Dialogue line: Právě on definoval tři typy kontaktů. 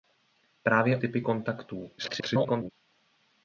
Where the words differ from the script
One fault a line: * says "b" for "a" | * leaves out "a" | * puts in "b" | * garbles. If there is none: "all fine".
* leaves out "on definoval tři"
* garbles